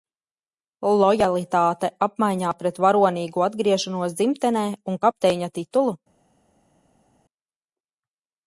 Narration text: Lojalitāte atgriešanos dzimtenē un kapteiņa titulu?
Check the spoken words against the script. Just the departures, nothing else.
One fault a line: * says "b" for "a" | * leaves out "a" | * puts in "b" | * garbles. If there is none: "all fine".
* puts in "apmaiņā pret varonīgu"